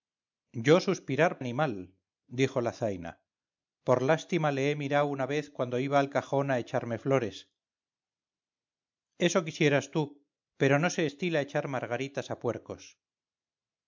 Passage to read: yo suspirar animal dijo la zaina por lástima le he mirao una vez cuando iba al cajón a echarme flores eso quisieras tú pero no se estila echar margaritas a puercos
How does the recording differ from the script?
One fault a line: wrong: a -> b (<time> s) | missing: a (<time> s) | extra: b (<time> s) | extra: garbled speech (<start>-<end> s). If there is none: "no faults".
no faults